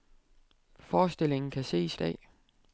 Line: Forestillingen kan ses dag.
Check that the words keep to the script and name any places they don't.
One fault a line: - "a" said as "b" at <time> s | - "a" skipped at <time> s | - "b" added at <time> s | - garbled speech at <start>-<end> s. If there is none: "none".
none